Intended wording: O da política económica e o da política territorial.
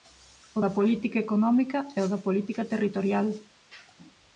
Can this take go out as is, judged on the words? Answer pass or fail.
pass